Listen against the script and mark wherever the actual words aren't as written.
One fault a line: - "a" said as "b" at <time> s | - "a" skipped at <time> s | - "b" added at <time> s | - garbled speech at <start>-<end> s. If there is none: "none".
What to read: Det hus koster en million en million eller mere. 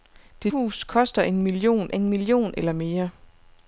none